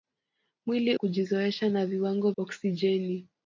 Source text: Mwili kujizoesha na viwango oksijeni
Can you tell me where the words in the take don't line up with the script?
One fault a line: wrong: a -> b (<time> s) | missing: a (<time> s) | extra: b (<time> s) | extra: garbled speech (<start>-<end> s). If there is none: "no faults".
no faults